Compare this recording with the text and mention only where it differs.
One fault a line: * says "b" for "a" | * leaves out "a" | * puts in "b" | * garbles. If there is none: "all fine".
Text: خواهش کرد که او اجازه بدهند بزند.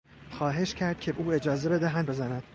all fine